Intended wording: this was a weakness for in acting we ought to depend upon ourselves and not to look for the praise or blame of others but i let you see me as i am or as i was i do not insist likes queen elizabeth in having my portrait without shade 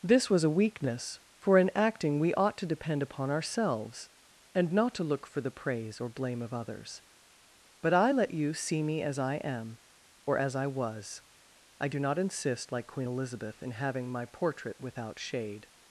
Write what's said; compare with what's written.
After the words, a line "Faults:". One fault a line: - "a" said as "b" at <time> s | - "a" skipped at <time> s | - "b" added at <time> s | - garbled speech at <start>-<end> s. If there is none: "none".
this was a weakness for in acting we ought to depend upon ourselves and not to look for the praise or blame of others but i let you see me as i am or as i was i do not insist like queen elizabeth in having my portrait without shade
Faults:
- "likes" said as "like" at 12.7 s